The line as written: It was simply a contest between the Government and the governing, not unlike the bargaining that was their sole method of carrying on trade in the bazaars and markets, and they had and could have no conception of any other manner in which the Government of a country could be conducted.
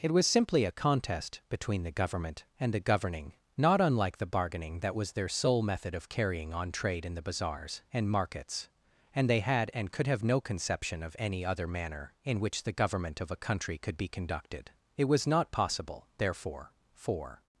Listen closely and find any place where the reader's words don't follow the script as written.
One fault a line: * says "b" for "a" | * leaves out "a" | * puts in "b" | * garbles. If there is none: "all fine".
* puts in "It was not possible therefore for"